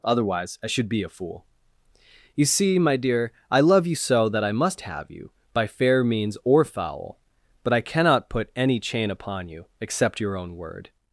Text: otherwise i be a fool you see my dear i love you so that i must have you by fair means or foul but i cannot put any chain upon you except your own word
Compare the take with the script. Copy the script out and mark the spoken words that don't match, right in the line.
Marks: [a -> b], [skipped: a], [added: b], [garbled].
otherwise i [added: should] be a fool you see my dear i love you so that i must have you by fair means or foul but i cannot put any chain upon you except your own word